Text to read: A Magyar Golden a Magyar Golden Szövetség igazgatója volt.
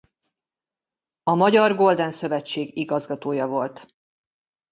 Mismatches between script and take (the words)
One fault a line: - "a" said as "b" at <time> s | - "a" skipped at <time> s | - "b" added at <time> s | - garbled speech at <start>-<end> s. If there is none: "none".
- "a Magyar Golden" skipped at 2.1 s